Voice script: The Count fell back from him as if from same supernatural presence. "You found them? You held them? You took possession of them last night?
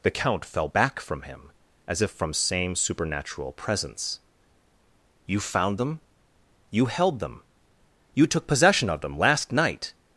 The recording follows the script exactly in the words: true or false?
true